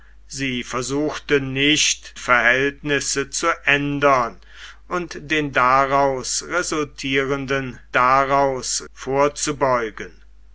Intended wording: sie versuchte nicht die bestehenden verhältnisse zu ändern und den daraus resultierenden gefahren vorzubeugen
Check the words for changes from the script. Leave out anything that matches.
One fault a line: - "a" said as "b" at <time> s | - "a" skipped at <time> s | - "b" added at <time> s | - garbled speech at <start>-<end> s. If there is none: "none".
- "die bestehenden" skipped at 2.1 s
- "gefahren" said as "daraus" at 7.9 s